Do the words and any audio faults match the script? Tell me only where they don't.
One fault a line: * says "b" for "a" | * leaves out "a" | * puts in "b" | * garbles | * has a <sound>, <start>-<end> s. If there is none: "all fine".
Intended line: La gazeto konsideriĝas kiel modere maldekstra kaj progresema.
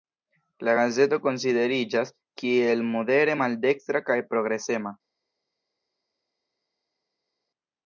all fine